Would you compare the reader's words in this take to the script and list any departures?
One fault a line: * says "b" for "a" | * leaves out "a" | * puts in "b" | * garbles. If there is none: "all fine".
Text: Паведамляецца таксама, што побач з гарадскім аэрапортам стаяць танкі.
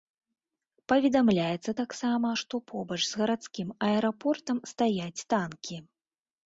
all fine